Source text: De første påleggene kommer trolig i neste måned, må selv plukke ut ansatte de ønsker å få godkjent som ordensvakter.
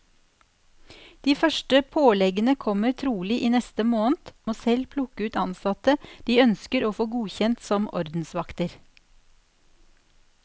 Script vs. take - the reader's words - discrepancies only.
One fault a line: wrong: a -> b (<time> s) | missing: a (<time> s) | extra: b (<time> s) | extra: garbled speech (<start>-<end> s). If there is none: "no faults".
no faults